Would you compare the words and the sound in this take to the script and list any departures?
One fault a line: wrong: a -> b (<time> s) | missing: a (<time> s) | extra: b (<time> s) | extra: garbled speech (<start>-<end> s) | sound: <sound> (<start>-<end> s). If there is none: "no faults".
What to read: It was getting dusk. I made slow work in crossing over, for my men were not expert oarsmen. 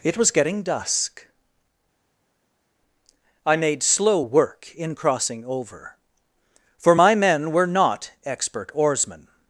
no faults